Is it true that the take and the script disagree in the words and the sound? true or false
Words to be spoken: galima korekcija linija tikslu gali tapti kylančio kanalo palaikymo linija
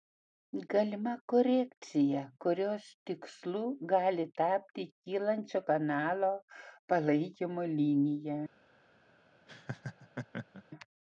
true